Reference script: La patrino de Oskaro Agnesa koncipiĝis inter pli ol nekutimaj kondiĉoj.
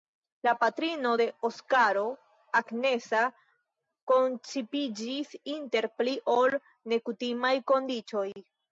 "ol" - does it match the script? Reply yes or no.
yes